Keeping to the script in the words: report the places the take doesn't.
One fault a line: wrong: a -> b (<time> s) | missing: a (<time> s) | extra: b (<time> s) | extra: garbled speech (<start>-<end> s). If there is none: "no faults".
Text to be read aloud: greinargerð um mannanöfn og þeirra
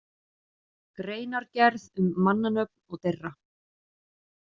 no faults